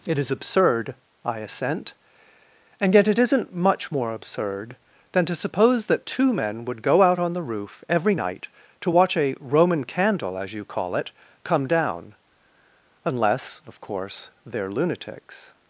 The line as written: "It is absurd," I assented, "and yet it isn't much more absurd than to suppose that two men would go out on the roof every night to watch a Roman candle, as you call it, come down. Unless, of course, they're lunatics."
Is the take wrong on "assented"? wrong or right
wrong